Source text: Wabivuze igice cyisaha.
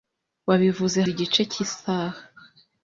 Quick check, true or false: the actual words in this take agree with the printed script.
true